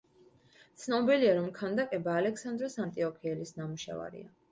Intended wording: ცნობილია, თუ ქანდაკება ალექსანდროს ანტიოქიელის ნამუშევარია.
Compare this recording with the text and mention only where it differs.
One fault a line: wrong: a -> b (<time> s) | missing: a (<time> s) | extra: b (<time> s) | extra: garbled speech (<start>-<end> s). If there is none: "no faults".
wrong: თუ -> რომ (1.4 s)